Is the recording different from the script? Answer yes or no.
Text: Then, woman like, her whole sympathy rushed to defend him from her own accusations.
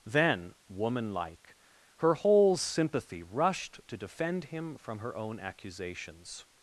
no